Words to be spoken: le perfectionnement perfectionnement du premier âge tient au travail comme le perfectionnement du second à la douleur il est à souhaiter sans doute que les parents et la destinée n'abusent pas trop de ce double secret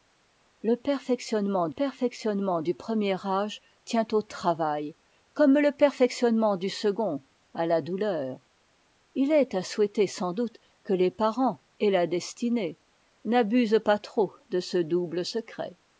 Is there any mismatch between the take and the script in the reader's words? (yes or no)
no